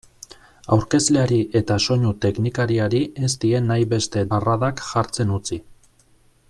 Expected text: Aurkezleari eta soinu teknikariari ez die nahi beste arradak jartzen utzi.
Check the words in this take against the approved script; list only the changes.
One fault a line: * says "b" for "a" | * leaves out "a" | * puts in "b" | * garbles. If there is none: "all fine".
all fine